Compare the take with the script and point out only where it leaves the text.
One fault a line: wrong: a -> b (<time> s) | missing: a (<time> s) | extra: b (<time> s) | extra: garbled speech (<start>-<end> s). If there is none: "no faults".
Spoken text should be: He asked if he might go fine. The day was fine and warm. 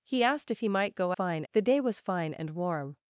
no faults